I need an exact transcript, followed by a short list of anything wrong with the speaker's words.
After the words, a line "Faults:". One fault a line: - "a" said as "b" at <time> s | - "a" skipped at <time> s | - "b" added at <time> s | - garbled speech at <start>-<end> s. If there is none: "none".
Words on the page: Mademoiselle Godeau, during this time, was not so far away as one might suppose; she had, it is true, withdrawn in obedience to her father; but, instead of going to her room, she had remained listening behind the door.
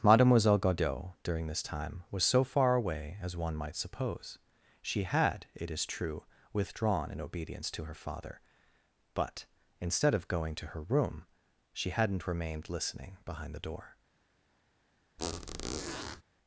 Mademoiselle Godeau, during this time, was so far away as one might suppose; she had, it is true, withdrawn in obedience to her father; but, instead of going to her room, she hadn't remained listening behind the door.
Faults:
- "not" skipped at 2.2 s
- "had" said as "hadn't" at 11.9 s